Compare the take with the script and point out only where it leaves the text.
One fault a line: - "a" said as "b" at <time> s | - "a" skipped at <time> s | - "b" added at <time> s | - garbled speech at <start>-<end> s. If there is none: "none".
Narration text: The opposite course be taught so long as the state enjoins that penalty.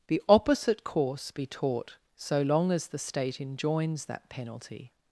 none